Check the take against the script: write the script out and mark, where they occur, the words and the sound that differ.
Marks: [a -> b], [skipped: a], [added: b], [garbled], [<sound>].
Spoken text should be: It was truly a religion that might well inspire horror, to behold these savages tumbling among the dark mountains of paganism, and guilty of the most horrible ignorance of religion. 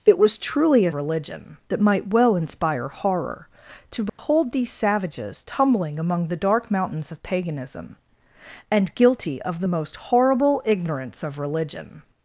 It was truly a religion that might well inspire horror, to behold [dropout] these savages tumbling among the dark mountains of paganism, and guilty of the most horrible ignorance of religion.